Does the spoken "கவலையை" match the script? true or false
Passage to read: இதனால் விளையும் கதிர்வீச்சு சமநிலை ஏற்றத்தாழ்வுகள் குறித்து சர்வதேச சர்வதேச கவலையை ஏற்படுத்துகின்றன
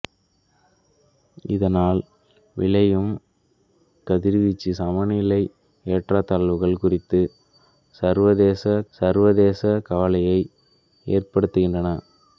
true